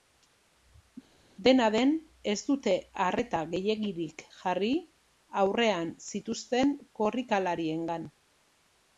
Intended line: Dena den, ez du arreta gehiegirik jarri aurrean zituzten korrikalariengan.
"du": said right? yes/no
no